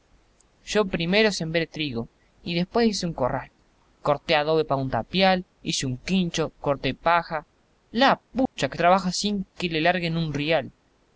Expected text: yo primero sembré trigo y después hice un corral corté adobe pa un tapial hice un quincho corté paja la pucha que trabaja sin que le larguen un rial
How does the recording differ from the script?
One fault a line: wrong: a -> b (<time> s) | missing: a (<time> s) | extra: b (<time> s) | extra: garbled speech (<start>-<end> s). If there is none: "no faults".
no faults